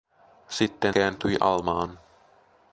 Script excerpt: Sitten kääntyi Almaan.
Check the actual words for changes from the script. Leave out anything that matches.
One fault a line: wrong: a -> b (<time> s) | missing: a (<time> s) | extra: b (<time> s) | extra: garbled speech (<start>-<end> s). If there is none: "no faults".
no faults